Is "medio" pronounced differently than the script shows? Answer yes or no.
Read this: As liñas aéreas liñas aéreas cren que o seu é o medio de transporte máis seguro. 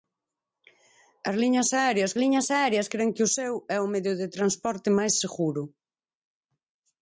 no